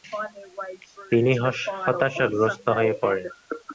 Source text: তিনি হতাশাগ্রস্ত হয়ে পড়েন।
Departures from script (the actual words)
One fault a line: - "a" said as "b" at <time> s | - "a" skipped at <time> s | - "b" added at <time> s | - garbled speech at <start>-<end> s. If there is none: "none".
none